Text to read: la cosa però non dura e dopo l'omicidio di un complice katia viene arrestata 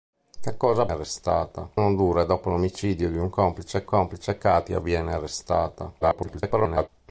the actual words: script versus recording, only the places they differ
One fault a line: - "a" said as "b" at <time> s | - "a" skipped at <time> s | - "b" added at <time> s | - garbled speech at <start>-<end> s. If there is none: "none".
- "però" said as "arrestata" at 0.9 s
- "complice" added at 3.9 s
- garbled speech at 6.0-6.9 s